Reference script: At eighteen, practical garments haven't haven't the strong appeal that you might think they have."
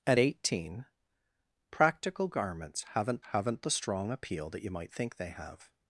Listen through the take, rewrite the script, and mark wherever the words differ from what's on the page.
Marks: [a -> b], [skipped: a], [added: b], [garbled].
At eighteen, practical garments haven't haven't the strong appeal that you might think they have."